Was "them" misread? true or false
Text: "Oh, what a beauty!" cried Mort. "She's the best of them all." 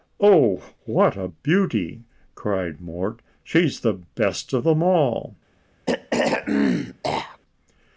false